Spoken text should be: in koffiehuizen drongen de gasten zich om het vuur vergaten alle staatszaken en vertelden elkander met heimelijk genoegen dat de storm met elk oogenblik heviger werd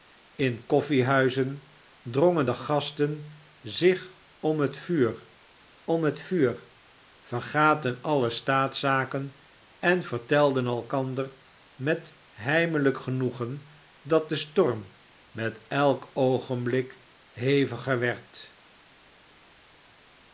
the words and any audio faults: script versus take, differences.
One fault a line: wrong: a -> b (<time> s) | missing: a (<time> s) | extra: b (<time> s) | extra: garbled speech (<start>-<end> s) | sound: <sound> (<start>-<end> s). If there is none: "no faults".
extra: om het vuur (5.8 s)